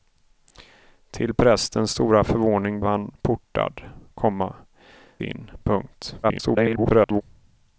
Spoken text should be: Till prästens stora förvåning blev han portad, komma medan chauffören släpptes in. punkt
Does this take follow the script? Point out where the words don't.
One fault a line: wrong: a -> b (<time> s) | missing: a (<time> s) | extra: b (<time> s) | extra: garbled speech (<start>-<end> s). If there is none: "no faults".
missing: blev (2.8 s)
missing: medan chauffören släpptes (4.6 s)
extra: garbled speech (6.2-7.2 s)